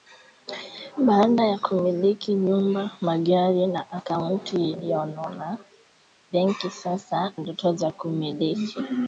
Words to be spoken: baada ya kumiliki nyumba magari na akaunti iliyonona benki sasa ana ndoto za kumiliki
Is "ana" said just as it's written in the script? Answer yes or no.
no